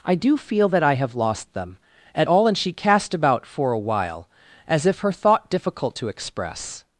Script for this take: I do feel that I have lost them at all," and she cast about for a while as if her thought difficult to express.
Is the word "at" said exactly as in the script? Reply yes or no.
yes